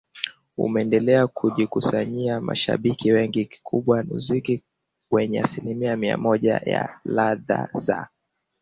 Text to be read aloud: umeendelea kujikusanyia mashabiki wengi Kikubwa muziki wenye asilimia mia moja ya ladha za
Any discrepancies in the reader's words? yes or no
no